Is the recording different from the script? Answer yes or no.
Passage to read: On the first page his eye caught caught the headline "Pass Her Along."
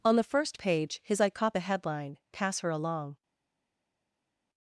yes